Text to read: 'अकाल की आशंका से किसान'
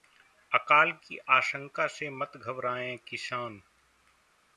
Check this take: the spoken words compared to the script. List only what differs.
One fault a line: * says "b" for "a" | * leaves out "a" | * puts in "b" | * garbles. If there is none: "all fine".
* puts in "मत घबराएं"